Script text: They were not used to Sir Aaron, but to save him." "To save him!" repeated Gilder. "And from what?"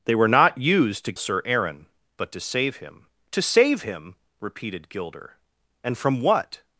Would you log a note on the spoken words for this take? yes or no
no